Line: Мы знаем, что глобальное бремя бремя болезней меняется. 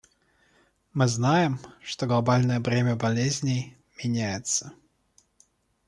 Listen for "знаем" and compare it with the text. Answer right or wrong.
right